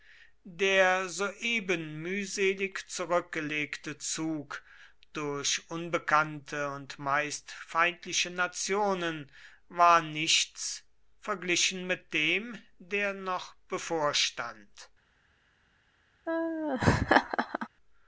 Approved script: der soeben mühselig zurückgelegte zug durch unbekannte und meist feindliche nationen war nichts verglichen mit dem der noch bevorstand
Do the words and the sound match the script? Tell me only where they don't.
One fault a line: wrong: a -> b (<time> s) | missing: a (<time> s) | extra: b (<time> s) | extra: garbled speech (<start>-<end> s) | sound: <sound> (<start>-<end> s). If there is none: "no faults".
sound: laugh (16.3-17.7 s)